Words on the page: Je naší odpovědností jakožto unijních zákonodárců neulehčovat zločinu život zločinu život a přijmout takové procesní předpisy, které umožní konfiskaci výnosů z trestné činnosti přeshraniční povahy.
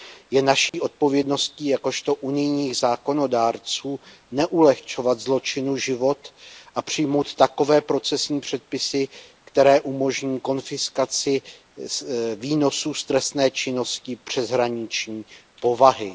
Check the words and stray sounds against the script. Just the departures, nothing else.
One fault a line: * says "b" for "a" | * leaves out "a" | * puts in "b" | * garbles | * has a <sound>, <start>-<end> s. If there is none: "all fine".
* has a dropout, 0.7-0.7 s
* leaves out "zločinu život"